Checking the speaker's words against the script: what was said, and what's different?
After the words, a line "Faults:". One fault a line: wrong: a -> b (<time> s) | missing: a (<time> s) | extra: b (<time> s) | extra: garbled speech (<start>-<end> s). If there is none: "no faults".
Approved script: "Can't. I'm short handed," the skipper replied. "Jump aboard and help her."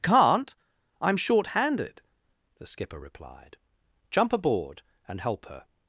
"Can't. I'm short handed," the skipper replied. "Jump aboard and help her."
Faults:
no faults